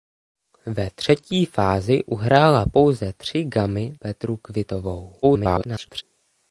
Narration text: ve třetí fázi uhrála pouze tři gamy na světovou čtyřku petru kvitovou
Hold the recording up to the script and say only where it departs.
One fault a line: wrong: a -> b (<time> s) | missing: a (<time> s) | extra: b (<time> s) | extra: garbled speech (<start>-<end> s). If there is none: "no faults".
missing: na světovou čtyřku (4.0 s)
extra: garbled speech (5.2-6.0 s)